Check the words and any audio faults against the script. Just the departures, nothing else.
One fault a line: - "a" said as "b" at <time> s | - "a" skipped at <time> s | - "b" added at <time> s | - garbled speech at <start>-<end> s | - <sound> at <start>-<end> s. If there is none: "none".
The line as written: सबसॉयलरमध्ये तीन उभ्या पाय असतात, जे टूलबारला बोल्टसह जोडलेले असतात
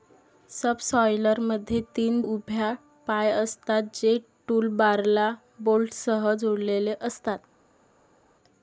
none